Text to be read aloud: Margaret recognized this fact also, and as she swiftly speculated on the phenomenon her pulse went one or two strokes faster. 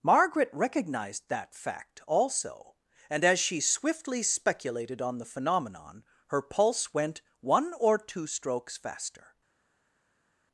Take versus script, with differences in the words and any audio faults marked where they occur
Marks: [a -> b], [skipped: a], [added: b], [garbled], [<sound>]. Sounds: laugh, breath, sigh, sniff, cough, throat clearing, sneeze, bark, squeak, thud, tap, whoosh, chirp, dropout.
Margaret recognized [this -> that] fact also, and as she swiftly speculated on the phenomenon her pulse went one or two strokes faster.